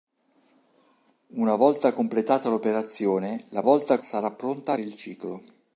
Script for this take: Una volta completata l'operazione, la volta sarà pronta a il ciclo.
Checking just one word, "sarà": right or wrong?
right